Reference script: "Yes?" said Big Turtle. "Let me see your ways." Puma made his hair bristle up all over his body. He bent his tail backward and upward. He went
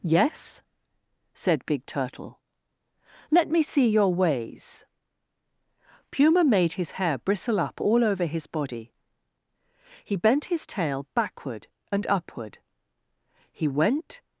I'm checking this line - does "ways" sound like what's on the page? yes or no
yes